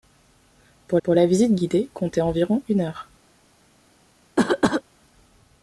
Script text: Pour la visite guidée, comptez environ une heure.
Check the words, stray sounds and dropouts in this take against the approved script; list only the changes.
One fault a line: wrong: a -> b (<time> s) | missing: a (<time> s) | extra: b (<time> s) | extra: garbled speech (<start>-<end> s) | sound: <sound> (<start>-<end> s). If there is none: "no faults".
extra: pour (1.0 s)
sound: cough (4.4-4.8 s)